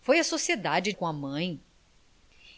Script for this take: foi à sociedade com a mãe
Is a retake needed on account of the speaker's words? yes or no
no